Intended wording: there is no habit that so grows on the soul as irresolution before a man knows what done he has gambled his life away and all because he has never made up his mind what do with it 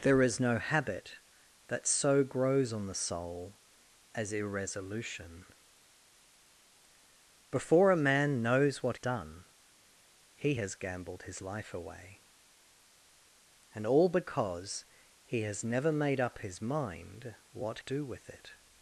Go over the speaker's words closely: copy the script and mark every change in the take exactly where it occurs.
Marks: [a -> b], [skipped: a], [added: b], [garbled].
there is no habit that so grows on the soul as irresolution before a man knows what done he has gambled his life away and all because he has never made up his mind what do with it